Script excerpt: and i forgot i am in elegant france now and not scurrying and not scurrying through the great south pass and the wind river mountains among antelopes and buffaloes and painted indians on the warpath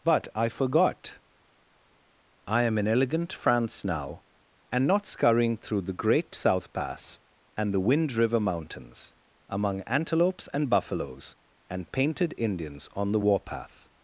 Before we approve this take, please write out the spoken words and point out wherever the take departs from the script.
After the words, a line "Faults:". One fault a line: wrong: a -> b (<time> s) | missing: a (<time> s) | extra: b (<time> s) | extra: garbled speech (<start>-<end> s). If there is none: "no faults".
but i forgot i am in elegant france now and not scurrying through the great south pass and the wind river mountains among antelopes and buffaloes and painted indians on the warpath
Faults:
wrong: and -> but (0.0 s)
missing: and not scurrying (5.6 s)